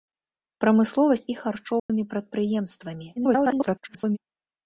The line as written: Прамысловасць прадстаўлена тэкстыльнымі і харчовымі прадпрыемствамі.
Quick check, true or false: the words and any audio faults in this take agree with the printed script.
false